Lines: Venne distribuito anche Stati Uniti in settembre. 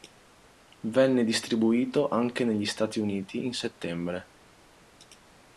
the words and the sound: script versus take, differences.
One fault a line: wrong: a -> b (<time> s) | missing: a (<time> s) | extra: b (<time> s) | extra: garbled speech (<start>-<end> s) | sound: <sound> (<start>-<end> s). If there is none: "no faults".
extra: negli (2.4 s)